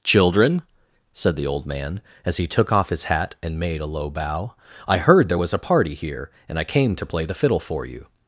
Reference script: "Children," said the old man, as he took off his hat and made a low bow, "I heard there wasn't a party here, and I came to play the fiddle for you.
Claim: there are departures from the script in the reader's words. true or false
true